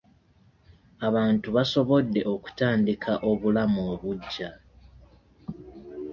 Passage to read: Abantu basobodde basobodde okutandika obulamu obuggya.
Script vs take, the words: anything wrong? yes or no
yes